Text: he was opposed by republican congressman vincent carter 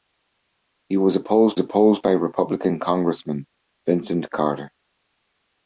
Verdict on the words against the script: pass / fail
fail